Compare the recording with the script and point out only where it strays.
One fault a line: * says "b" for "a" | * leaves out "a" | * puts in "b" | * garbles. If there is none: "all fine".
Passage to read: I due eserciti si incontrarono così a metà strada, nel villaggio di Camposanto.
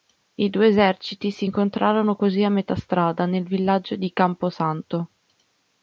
all fine